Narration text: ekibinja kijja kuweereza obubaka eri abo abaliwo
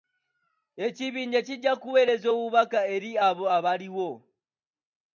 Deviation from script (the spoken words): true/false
false